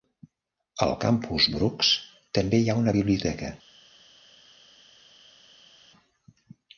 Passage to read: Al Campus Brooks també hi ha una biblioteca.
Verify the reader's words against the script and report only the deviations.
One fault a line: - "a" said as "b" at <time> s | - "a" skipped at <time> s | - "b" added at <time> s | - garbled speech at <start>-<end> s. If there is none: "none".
none